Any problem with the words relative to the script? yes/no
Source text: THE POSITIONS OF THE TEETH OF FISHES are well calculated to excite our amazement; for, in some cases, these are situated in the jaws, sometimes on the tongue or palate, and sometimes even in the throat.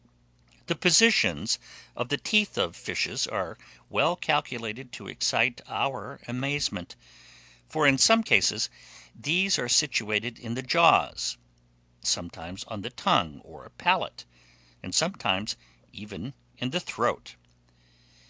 no